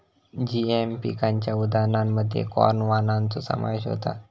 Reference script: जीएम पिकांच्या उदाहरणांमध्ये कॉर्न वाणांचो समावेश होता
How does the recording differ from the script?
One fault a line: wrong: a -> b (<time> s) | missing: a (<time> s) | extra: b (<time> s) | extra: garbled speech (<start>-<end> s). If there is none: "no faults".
no faults